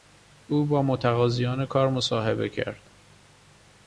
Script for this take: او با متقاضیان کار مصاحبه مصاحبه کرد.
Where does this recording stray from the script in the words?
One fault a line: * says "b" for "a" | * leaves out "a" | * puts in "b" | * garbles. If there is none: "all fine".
* leaves out "مصاحبه"